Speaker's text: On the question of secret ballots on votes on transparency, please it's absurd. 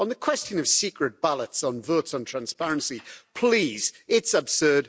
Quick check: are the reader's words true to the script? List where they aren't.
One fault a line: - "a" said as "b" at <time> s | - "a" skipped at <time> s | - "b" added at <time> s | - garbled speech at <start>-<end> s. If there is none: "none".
none